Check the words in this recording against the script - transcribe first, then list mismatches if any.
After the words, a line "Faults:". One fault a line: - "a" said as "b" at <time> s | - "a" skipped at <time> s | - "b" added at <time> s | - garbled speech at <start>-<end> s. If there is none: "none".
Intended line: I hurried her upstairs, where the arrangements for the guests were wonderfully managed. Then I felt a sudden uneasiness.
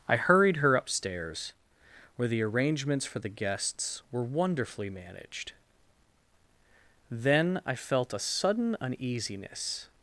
I hurried her upstairs, where the arrangements for the guests were wonderfully managed. Then I felt a sudden uneasiness.
Faults:
none